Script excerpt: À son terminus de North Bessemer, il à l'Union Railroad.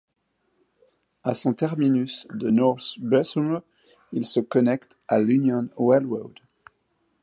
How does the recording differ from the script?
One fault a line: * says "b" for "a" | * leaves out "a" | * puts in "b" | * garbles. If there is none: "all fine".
* puts in "se connecte"